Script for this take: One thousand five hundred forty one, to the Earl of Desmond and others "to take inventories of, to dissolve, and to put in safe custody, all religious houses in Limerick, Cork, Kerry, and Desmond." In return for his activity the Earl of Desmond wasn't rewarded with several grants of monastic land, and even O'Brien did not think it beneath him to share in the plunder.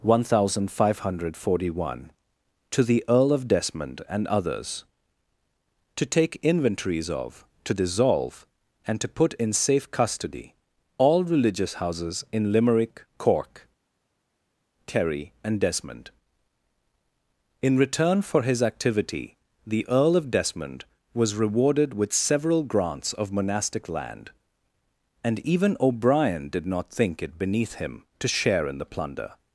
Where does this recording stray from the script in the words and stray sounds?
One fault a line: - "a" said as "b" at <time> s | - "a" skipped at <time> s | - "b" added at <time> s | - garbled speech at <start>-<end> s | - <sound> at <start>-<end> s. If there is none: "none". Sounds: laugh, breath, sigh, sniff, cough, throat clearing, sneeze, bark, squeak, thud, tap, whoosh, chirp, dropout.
- "wasn't" said as "was" at 21.1 s